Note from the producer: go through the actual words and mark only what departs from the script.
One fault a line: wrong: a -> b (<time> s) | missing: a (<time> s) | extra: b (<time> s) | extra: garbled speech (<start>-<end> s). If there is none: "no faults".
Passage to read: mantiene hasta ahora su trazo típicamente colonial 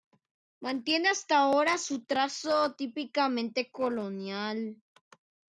no faults